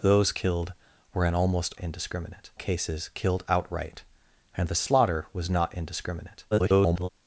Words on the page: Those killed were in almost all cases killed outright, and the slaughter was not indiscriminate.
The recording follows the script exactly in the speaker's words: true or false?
false